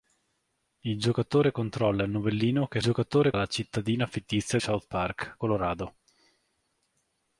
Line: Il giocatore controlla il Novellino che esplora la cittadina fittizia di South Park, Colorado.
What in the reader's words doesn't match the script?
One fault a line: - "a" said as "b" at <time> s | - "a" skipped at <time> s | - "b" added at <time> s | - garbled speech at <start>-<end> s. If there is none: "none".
- "esplora" said as "giocatore" at 2.8 s
- "di" skipped at 4.6 s